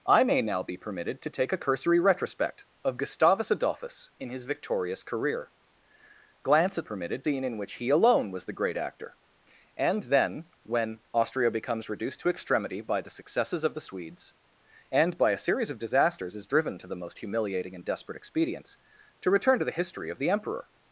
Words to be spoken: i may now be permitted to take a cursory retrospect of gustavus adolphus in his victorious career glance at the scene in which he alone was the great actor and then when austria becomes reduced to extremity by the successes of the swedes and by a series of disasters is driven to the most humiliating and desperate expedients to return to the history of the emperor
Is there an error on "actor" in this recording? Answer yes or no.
no